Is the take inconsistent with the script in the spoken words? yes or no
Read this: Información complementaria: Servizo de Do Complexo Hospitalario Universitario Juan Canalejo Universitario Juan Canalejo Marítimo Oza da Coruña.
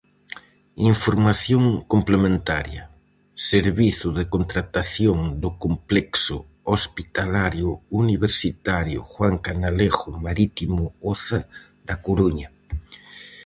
yes